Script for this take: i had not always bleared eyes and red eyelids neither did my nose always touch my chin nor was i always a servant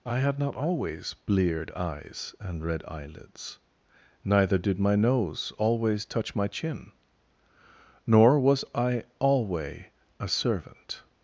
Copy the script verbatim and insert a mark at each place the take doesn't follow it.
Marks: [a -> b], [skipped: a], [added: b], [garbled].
i had not always bleared eyes and red eyelids neither did my nose always touch my chin nor was i [always -> alway] a servant